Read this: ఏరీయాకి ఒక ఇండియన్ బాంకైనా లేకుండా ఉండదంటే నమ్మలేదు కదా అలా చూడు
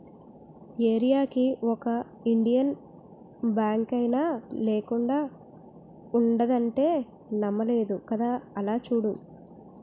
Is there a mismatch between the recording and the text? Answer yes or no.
no